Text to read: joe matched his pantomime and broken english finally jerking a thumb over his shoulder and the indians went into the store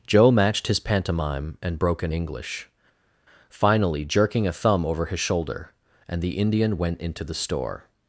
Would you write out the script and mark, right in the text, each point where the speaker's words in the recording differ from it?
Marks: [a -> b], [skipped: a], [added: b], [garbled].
joe matched his pantomime and broken english finally jerking a thumb over his shoulder and the [indians -> indian] went into the store